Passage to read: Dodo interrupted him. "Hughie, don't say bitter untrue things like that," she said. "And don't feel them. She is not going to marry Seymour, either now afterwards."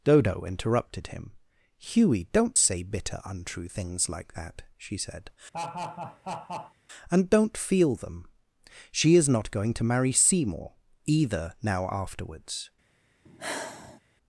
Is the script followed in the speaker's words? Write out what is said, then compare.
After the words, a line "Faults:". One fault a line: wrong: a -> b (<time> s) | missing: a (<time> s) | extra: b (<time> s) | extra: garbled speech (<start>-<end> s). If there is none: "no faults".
Dodo interrupted him. "Hughie, don't say bitter untrue things like that," she said. "And don't feel them. She is not going to marry Seymour, either now afterwards."
Faults:
no faults